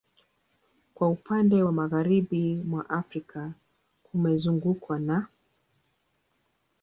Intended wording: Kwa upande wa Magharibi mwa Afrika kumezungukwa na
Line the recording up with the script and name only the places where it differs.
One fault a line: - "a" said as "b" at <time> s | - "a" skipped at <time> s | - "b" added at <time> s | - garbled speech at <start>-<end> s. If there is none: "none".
none